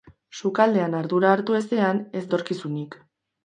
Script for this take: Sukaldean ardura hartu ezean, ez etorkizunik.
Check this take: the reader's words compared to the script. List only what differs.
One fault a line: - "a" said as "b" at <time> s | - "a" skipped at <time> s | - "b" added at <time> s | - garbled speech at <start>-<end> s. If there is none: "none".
none